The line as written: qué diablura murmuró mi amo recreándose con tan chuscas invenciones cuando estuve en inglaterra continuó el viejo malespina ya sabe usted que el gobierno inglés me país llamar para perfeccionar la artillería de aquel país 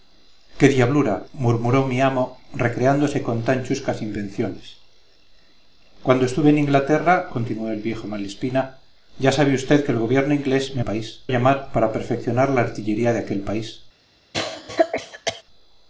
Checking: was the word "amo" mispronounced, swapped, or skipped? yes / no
no